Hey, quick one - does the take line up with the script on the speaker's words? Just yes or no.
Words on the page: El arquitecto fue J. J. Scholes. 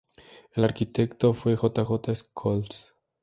yes